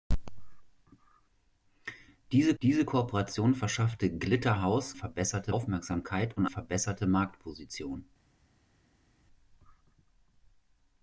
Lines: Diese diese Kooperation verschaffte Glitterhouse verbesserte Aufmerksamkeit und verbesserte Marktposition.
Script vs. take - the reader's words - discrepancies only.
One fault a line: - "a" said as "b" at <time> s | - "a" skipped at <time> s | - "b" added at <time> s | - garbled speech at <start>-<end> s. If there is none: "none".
none